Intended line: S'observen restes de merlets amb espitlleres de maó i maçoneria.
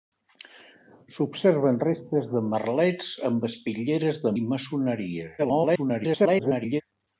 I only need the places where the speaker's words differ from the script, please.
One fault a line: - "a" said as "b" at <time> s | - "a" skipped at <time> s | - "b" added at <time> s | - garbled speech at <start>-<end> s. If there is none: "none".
- "maó" skipped at 4.3 s
- garbled speech at 5.4-6.8 s